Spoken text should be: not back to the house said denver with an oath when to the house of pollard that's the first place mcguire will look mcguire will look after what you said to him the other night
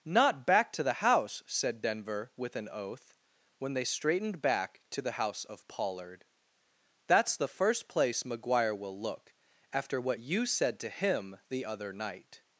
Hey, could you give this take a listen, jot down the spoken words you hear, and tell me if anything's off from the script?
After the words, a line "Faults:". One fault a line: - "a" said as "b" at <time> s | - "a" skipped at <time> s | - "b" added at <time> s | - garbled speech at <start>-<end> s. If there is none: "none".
not back to the house said denver with an oath when they straightened back to the house of pollard that's the first place mcguire will look after what you said to him the other night
Faults:
- "they straightened back" added at 3.7 s
- "mcguire will look" skipped at 9.3 s